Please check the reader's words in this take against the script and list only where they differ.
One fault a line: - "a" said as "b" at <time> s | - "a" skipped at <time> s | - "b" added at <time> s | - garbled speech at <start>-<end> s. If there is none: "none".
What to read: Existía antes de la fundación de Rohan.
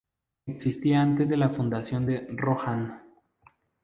none